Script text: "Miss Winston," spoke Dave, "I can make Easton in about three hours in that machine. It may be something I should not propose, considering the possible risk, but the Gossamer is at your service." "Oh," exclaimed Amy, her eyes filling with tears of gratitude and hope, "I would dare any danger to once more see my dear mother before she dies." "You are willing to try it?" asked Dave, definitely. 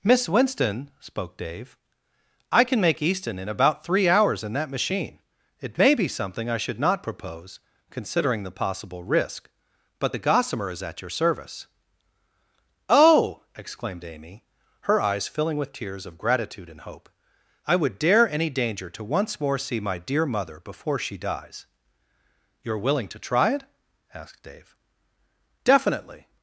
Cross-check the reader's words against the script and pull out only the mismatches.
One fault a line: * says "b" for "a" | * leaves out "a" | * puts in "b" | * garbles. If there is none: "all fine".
all fine